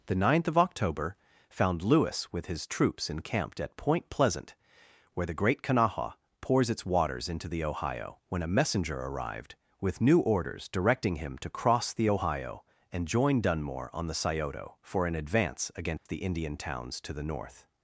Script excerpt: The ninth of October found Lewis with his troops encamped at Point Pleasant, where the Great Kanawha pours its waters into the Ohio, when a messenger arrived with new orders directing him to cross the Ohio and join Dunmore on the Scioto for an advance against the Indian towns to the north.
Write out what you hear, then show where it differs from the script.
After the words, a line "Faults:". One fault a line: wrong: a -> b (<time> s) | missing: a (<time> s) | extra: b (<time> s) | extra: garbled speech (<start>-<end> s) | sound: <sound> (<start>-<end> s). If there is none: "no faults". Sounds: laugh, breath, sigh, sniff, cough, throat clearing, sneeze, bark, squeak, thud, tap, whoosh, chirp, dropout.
The ninth of October found Lewis with his troops encamped at Point Pleasant, where the Great Kanawha pours its waters into the Ohio, when a messenger arrived with new orders directing him to cross the Ohio and join Dunmore on the Scioto for an advance against the Indian towns to the north.
Faults:
sound: dropout (16.0-16.1 s)